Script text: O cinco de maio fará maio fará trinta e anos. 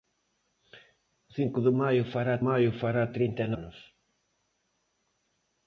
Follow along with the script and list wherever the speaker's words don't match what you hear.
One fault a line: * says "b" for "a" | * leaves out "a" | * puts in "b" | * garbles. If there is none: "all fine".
all fine